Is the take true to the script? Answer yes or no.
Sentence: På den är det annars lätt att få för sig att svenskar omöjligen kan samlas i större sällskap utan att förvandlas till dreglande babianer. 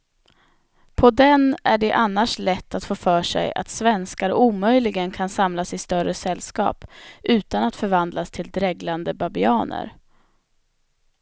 yes